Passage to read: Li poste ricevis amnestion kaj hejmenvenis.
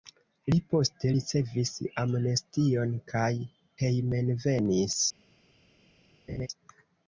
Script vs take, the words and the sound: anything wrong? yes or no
yes